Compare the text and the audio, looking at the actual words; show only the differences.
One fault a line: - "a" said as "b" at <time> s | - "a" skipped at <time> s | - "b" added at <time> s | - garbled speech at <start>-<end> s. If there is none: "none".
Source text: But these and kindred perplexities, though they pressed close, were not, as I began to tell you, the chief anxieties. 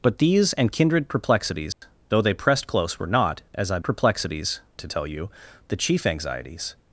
- "began" said as "perplexities" at 3.8 s